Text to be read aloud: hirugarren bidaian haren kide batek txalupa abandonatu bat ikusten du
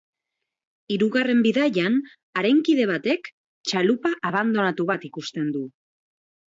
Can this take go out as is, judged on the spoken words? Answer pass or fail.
pass